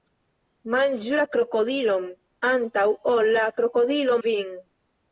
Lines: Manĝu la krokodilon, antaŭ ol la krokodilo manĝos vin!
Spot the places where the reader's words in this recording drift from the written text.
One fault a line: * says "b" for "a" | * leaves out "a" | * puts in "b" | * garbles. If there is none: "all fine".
* leaves out "manĝos"